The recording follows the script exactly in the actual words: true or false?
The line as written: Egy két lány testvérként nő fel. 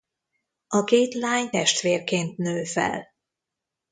false